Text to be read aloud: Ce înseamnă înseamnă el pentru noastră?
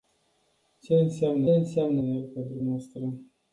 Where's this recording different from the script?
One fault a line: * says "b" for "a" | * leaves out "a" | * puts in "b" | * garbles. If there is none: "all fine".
all fine